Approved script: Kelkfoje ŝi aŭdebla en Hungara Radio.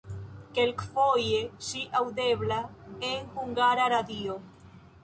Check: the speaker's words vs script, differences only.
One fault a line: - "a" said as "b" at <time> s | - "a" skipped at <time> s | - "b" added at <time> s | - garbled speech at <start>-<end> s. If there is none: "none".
none